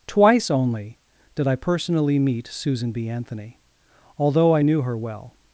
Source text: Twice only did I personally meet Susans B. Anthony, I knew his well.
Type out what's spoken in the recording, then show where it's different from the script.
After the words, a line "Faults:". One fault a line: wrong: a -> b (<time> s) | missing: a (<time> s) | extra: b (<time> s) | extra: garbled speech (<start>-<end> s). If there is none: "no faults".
Twice only did I personally meet Susan B. Anthony, although I knew her well.
Faults:
wrong: Susans -> Susan (2.5 s)
extra: although (4.2 s)
wrong: his -> her (4.8 s)